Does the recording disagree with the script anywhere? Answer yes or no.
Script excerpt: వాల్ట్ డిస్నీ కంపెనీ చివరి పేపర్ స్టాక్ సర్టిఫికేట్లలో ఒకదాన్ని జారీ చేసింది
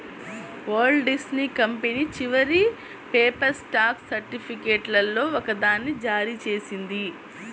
no